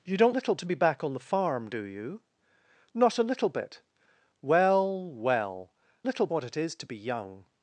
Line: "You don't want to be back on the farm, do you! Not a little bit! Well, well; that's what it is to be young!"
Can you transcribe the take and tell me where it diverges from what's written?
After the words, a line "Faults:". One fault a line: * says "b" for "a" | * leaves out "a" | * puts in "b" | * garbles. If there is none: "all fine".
"You don't little to be back on the farm, do you! Not a little bit! Well, well; little what it is to be young!"
Faults:
* says "little" for "want"
* says "little" for "that's"